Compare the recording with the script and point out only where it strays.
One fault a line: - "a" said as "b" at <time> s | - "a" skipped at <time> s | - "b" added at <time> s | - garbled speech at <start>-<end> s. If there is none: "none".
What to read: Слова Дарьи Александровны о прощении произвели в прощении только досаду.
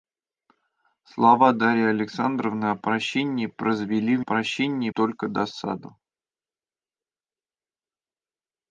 none